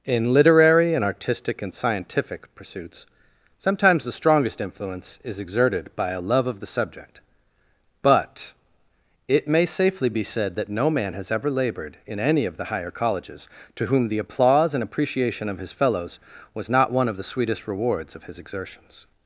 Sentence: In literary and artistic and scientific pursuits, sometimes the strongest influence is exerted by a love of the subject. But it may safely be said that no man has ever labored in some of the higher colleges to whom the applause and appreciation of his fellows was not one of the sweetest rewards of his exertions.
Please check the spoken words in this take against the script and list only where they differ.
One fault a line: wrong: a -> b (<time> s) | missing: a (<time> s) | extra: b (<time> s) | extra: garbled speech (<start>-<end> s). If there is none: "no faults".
wrong: some -> any (12.2 s)